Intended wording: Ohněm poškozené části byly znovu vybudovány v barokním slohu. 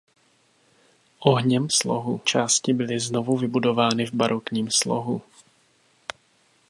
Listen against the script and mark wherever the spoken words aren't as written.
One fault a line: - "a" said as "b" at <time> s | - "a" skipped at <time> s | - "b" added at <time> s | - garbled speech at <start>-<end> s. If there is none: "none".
- "poškozené" said as "slohu" at 1.7 s